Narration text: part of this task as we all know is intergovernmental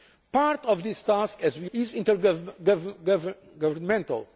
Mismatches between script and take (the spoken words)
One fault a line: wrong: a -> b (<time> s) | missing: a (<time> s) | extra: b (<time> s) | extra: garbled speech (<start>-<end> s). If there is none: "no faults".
missing: all know (1.7 s)